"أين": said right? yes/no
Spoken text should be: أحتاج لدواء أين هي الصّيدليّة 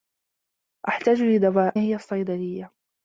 no